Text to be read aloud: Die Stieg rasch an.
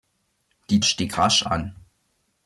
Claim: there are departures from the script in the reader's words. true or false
false